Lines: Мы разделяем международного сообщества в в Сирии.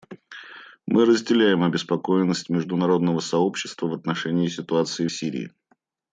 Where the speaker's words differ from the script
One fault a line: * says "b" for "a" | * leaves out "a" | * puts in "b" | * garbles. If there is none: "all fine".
* puts in "обеспокоенность"
* puts in "отношении ситуации"